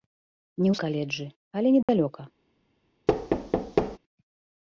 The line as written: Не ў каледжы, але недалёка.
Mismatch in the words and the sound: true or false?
true